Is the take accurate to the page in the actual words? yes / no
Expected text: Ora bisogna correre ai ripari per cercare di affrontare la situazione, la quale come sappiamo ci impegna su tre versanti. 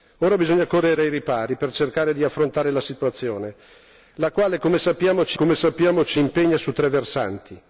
no